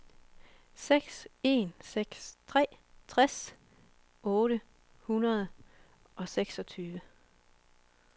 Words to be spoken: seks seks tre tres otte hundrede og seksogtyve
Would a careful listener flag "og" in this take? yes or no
no